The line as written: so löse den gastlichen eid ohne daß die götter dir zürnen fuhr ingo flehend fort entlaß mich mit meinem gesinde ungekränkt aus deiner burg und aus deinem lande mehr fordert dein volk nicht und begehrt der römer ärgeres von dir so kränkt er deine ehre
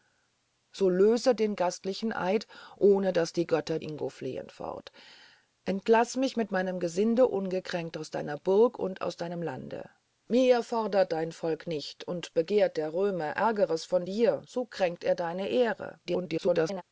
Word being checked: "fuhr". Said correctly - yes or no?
no